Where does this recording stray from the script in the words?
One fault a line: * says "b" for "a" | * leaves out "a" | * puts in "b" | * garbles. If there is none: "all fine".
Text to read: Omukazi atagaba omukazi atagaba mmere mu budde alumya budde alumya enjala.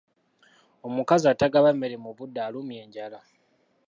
* leaves out "omukazi atagaba"
* leaves out "budde alumya"